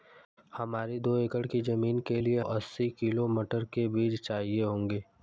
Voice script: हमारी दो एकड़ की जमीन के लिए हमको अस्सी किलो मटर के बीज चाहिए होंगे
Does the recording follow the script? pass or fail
fail